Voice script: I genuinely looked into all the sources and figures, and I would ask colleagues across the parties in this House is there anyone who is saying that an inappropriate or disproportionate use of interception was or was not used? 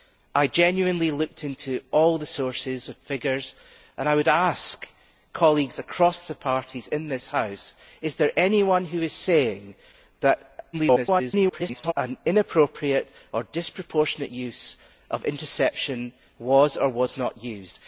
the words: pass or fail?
fail